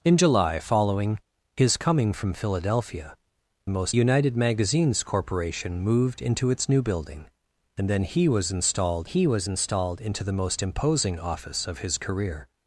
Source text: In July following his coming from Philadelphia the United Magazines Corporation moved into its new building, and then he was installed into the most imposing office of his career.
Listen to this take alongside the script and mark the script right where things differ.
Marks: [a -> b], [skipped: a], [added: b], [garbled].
In July following his coming from Philadelphia [the -> most] United Magazines Corporation moved into its new building, and then he was installed [added: he was installed] into the most imposing office of his career.